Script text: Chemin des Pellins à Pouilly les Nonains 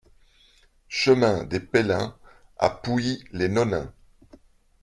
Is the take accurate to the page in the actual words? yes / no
yes